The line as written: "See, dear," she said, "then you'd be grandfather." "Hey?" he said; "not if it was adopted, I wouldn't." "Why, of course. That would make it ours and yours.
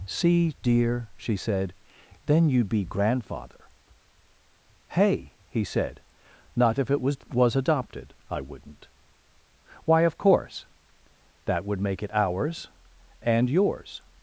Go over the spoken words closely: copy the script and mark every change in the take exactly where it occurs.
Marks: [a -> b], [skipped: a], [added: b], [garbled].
"See, dear," she said, "then you'd be grandfather." "Hey?" he said; "not if it was [added: was] adopted, I wouldn't." "Why, of course. That would make it ours and yours.